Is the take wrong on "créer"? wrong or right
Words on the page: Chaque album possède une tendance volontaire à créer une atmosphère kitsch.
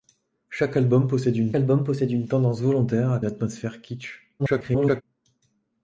wrong